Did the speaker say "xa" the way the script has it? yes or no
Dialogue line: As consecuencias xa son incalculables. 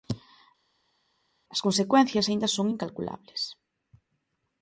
no